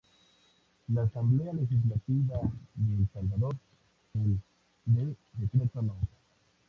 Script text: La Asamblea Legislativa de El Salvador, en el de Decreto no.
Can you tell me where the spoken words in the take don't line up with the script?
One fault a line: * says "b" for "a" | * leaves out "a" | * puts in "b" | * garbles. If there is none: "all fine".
* leaves out "en"